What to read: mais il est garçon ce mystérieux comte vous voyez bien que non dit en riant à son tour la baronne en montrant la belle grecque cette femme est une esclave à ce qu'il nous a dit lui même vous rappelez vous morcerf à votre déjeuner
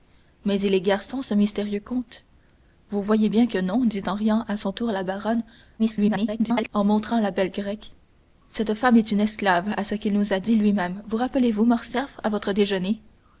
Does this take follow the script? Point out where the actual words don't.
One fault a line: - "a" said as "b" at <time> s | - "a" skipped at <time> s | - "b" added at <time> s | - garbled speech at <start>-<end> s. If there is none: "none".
- garbled speech at 5.8-6.7 s